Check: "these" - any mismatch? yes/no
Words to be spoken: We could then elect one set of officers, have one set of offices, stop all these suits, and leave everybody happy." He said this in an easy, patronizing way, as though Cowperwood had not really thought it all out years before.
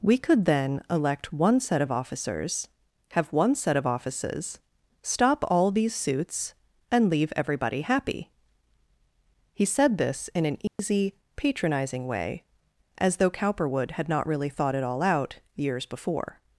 no